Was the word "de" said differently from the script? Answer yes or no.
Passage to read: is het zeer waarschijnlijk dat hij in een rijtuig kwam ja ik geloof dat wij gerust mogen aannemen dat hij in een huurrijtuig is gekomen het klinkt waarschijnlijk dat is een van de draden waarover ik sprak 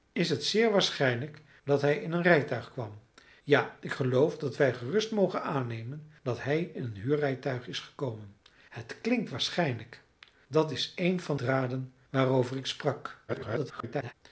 yes